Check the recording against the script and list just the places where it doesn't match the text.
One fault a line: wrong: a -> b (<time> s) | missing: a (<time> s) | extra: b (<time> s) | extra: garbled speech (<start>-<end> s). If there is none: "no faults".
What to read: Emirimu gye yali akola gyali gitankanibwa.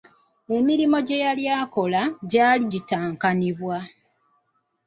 no faults